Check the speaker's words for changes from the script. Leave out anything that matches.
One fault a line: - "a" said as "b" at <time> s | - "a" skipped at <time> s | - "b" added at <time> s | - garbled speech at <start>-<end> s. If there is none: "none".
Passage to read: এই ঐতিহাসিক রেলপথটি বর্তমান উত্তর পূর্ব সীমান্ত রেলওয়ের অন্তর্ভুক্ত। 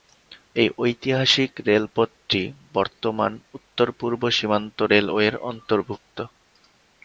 none